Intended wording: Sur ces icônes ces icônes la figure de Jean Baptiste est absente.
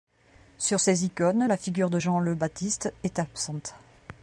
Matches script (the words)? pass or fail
fail